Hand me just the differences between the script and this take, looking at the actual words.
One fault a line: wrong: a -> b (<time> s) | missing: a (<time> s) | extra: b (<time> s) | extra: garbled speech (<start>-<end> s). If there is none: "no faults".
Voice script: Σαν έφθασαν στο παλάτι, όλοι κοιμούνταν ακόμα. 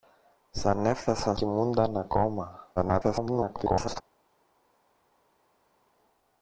missing: στο παλάτι όλοι (1.4 s)
extra: garbled speech (2.8-4.0 s)